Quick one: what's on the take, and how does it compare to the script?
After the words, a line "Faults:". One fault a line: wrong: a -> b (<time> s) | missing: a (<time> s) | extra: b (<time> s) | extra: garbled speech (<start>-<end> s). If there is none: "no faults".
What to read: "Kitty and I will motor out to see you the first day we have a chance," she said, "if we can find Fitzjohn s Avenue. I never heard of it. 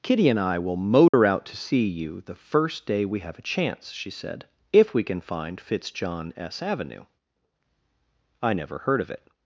"Kitty and I will motor out to see you the first day we have a chance," she said, "if we can find Fitzjohn s Avenue. I never heard of it.
Faults:
no faults